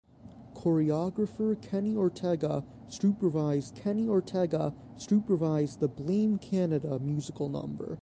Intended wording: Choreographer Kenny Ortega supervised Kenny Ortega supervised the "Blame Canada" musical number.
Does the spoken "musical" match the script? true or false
true